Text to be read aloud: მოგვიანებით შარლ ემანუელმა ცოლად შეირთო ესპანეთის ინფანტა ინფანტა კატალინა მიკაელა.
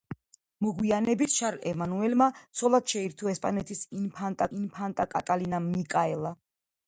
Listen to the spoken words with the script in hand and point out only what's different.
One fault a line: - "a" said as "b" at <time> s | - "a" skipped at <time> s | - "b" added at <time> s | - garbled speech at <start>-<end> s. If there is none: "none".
none